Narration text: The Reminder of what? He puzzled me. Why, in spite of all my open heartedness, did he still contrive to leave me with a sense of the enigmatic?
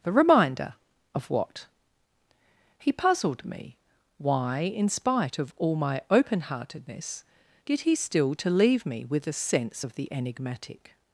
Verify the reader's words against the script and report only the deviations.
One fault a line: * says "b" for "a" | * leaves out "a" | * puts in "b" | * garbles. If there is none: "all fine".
* leaves out "contrive"